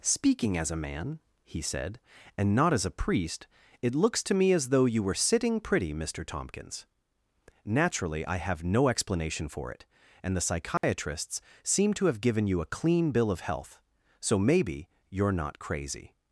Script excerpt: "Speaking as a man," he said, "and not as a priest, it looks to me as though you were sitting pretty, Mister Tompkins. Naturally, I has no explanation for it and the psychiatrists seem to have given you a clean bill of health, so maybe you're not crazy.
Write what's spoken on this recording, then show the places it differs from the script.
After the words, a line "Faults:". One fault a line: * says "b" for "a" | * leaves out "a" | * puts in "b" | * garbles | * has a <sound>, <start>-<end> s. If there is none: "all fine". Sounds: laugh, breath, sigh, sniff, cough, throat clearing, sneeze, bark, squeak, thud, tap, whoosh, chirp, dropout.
"Speaking as a man," he said, "and not as a priest, it looks to me as though you were sitting pretty, Mister Tompkins. Naturally, I have no explanation for it and the psychiatrists seem to have given you a clean bill of health, so maybe you're not crazy.
Faults:
* says "have" for "has"
* has a dropout, 10.8-10.8 s